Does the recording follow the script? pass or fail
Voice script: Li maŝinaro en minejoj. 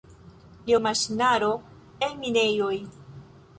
pass